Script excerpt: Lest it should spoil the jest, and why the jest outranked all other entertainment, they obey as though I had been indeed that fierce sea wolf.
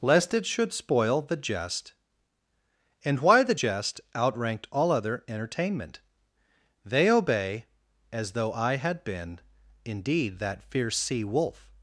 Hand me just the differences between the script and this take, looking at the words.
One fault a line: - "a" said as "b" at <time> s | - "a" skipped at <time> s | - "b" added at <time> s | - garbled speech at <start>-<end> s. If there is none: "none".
none